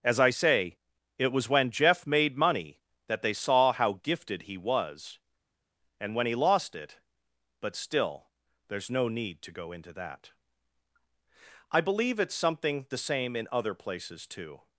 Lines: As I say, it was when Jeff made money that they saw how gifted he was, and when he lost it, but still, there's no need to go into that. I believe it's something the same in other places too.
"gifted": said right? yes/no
yes